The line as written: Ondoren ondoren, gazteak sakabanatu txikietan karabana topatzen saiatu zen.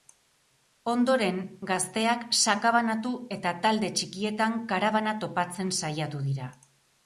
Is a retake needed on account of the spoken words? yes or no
yes